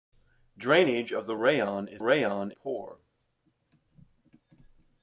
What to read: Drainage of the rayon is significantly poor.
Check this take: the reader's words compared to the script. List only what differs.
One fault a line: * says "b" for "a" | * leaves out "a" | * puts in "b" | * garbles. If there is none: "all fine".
* says "rayon" for "significantly"